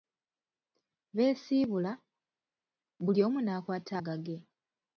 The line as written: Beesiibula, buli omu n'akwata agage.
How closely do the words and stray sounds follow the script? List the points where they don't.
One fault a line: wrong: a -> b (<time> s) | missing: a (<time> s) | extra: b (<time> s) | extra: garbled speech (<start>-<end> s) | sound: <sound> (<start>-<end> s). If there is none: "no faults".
no faults